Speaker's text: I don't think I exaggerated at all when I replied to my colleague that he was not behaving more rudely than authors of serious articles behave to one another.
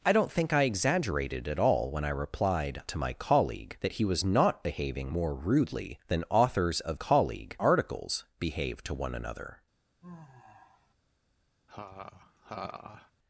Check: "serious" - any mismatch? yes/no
yes